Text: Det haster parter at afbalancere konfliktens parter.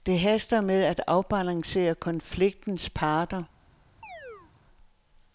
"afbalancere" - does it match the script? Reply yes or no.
yes